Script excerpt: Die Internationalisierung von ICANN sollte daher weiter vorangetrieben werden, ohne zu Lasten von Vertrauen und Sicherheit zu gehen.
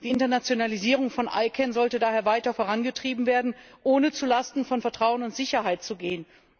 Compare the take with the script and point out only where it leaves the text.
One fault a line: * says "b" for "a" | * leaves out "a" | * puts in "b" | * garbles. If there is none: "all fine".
all fine